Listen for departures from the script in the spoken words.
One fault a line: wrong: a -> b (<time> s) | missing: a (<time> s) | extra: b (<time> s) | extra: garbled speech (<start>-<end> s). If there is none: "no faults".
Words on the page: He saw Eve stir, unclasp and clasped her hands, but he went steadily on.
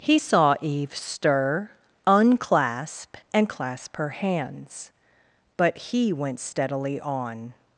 wrong: clasped -> clasp (3.5 s)